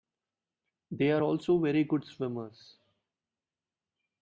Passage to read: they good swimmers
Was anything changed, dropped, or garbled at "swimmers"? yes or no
no